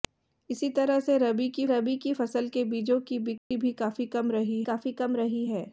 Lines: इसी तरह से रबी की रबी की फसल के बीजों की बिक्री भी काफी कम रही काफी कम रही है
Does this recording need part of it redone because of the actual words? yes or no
no